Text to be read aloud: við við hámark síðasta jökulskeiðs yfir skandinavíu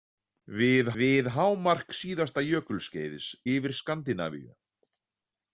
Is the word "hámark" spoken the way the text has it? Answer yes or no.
yes